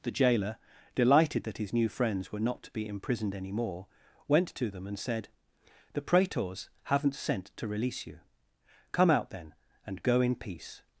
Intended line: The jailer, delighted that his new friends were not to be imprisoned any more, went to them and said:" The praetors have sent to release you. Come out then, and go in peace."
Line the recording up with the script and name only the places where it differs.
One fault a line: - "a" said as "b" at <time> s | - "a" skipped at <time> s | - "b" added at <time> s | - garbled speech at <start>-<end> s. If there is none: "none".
- "have" said as "haven't" at 6.8 s